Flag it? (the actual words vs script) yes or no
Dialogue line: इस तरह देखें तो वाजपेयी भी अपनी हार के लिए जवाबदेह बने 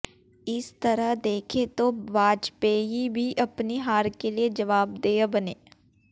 no